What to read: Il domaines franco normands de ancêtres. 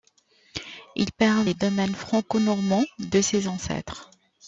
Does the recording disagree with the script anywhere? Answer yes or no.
yes